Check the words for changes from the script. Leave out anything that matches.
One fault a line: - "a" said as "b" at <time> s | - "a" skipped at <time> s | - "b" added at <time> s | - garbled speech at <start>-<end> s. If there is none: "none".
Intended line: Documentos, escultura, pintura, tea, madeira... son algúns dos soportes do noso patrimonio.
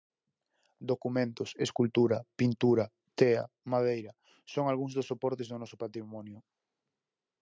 none